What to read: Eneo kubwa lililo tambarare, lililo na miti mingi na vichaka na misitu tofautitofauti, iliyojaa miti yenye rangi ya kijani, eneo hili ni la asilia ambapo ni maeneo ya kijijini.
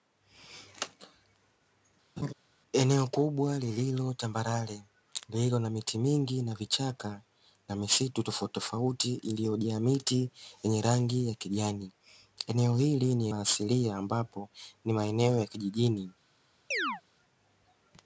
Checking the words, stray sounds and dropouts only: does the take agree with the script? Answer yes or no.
no